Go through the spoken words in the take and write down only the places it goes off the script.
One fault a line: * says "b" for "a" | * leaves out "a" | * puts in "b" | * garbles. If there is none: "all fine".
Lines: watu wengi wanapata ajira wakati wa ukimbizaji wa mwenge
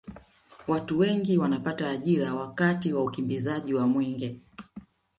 all fine